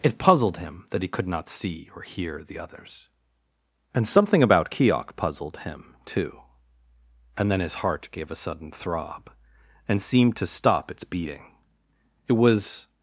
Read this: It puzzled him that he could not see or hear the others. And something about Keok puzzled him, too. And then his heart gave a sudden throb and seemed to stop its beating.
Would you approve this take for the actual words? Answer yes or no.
no